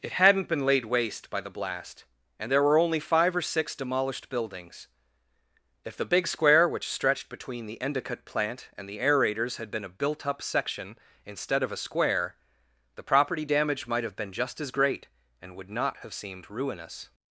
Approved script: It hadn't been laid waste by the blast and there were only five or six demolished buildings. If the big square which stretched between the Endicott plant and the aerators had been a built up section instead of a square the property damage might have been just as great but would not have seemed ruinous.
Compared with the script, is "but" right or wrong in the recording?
wrong